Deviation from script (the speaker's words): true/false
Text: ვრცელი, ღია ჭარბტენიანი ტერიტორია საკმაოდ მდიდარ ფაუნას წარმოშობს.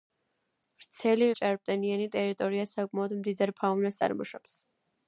true